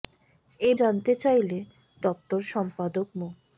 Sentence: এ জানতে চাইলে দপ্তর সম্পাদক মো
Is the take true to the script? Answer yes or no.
yes